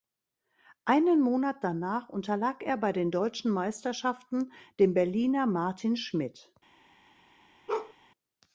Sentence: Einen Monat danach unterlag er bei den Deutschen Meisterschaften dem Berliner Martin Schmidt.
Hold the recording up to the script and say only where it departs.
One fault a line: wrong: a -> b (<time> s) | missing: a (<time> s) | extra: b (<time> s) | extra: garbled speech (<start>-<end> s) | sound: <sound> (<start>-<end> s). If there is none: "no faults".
sound: bark (7.7-7.9 s)